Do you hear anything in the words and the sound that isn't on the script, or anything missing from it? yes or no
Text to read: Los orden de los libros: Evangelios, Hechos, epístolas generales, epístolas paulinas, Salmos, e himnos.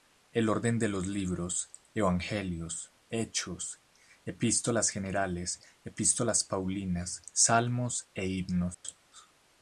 yes